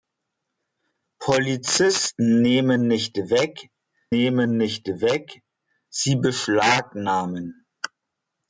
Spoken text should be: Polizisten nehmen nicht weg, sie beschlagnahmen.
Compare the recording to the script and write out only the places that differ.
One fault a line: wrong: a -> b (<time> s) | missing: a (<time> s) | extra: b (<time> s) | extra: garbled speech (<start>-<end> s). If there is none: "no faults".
extra: nehmen nicht weg (4.1 s)